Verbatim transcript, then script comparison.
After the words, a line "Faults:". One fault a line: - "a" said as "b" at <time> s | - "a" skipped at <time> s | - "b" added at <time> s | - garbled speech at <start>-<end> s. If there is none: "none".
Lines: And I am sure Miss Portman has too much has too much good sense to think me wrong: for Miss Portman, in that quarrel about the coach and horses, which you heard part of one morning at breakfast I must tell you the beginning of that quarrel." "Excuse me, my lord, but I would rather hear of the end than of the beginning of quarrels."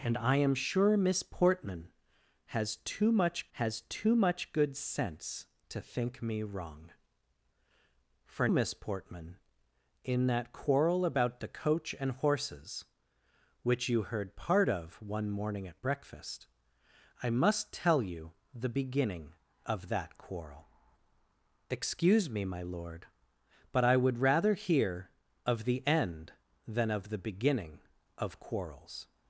And I am sure Miss Portman has too much has too much good sense to think me wrong: for Miss Portman, in that quarrel about the coach and horses, which you heard part of one morning at breakfast I must tell you the beginning of that quarrel." "Excuse me, my lord, but I would rather hear of the end than of the beginning of quarrels."
Faults:
none